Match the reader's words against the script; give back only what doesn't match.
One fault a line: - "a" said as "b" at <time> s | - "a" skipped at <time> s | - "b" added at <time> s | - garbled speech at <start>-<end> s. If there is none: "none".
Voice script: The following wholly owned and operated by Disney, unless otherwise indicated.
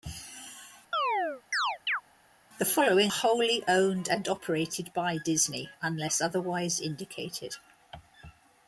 none